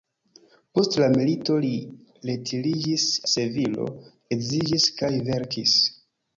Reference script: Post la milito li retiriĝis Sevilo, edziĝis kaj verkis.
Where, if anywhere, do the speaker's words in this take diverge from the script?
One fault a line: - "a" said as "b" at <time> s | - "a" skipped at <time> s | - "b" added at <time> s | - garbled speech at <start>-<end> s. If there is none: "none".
none